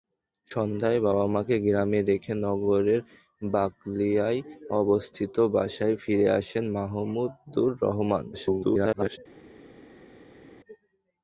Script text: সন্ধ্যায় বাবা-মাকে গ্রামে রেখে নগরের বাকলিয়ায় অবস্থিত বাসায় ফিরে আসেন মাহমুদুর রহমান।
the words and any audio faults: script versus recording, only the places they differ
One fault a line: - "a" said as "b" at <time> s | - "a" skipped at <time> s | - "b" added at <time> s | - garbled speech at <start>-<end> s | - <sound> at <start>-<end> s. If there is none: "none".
- garbled speech at 8.3-9.2 s